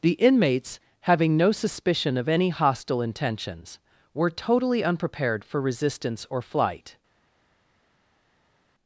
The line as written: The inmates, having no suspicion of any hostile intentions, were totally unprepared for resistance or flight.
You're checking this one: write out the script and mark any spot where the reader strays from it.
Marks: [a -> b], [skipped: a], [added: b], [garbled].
The inmates, having no suspicion of any hostile intentions, were totally unprepared for resistance or flight.